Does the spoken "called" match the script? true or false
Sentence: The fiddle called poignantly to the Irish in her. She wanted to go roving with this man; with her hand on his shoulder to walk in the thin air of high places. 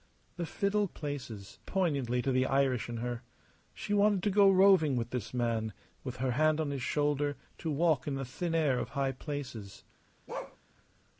false